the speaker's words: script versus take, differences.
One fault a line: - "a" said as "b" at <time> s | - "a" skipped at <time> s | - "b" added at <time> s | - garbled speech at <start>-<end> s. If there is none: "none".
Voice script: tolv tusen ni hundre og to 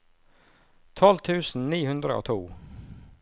none